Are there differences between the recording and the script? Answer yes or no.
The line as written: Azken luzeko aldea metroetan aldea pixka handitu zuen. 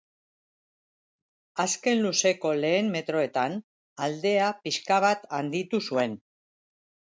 yes